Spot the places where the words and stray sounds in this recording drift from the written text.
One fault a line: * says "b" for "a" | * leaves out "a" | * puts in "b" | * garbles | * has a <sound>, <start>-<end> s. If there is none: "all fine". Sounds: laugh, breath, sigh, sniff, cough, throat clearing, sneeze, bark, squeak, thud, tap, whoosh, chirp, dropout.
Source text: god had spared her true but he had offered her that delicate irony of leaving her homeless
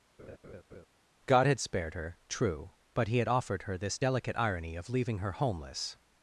* has a laugh, 0.2-0.9 s
* says "this" for "that"